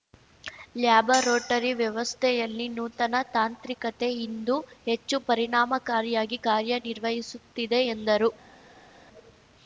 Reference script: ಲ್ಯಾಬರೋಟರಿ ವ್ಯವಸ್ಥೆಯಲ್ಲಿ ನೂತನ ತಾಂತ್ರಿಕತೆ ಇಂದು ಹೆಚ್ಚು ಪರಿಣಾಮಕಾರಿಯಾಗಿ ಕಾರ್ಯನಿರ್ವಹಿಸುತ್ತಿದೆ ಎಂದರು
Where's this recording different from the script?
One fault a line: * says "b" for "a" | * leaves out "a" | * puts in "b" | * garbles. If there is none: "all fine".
all fine